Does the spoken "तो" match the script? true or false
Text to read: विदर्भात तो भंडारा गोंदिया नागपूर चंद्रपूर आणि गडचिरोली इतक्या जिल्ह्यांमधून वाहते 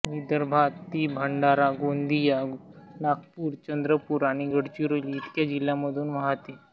false